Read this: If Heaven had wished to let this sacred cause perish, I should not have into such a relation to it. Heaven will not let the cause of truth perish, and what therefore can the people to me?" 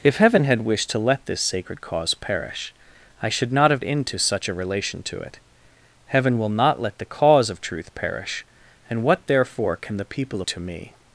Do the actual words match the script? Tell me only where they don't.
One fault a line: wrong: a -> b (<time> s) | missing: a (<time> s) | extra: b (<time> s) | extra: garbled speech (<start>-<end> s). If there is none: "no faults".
no faults